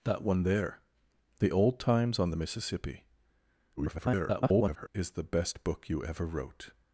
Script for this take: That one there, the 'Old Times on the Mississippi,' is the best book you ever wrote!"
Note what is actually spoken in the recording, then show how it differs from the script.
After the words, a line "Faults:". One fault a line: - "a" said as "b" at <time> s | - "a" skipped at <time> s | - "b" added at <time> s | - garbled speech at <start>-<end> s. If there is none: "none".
That one there, the 'Old Times on the Mississippi,' [garbled] is the best book you ever wrote!"
Faults:
- garbled speech at 3.8-4.9 s